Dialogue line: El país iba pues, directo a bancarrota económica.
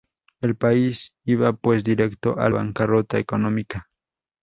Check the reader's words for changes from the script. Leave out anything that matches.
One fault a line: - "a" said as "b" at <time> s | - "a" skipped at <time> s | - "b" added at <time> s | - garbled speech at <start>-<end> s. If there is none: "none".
none